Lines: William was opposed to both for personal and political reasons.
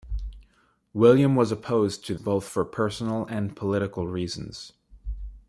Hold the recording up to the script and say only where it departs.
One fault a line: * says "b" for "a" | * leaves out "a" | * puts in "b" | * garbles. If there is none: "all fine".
all fine